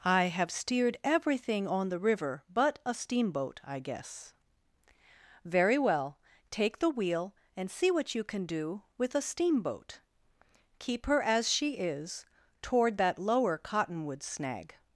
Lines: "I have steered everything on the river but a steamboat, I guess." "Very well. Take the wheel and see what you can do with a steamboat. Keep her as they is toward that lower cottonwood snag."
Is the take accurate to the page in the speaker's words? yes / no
no